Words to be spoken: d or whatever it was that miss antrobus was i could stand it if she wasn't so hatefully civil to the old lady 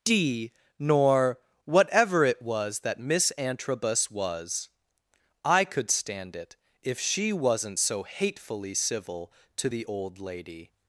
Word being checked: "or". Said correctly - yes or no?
no